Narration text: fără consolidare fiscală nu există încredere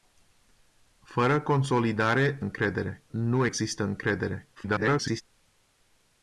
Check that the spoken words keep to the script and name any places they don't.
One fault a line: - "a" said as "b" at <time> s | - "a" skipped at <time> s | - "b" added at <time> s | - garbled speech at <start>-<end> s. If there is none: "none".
- "fiscală" said as "încredere" at 2.4 s
- garbled speech at 4.6-5.2 s